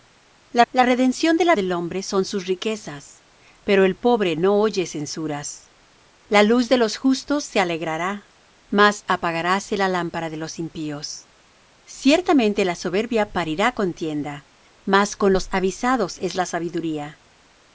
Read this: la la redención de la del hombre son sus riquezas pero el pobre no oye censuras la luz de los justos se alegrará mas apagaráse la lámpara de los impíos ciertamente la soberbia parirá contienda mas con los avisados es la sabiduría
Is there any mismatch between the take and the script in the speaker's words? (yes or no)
no